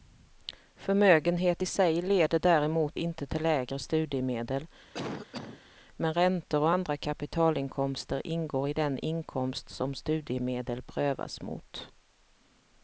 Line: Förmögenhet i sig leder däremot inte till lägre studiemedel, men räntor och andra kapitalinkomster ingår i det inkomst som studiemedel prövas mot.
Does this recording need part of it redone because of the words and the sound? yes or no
yes